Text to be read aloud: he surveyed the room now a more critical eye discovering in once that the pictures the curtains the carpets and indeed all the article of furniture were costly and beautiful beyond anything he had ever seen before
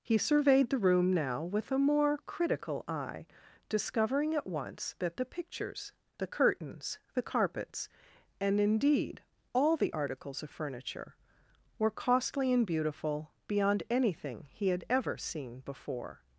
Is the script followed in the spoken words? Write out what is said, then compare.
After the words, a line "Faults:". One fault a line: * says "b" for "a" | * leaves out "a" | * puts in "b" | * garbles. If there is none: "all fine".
he surveyed the room now with a more critical eye discovering at once that the pictures the curtains the carpets and indeed all the articles of furniture were costly and beautiful beyond anything he had ever seen before
Faults:
* puts in "with"
* says "at" for "in"
* says "articles" for "article"